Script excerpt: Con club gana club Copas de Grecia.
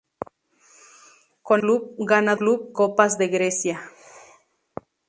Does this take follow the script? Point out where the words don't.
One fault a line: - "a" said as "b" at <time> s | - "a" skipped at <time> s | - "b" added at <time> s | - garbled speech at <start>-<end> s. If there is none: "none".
none